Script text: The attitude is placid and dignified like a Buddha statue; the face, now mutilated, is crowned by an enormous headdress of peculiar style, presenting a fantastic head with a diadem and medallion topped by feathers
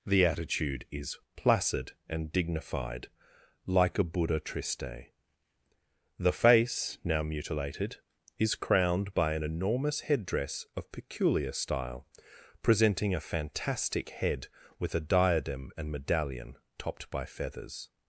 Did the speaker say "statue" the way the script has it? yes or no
no